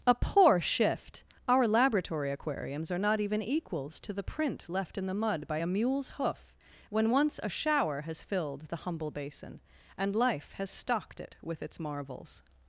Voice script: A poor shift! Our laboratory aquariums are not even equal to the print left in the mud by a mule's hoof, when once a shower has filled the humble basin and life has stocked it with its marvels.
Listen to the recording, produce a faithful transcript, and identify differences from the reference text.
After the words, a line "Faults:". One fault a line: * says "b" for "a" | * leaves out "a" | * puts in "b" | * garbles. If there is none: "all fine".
A poor shift! Our laboratory aquariums are not even equals to the print left in the mud by a mule's hoof, when once a shower has filled the humble basin and life has stocked it with its marvels.
Faults:
* says "equals" for "equal"